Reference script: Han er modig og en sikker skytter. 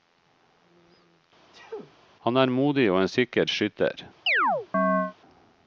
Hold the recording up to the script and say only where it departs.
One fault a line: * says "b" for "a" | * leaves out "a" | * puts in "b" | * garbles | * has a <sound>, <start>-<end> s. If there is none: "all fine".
* has a sneeze, 1.5-1.9 s
* has a chirp, 4.3-5.1 s